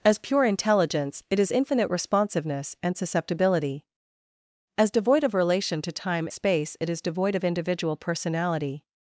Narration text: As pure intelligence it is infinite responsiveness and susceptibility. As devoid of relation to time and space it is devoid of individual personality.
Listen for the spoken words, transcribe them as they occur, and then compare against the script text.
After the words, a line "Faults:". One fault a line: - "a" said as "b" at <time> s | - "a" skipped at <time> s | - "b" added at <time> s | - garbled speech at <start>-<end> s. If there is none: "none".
As pure intelligence it is infinite responsiveness and susceptibility. As devoid of relation to time space it is devoid of individual personality.
Faults:
- "and" skipped at 6.3 s